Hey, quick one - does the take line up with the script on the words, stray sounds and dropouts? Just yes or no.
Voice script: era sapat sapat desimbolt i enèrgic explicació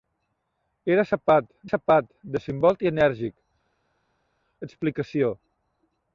yes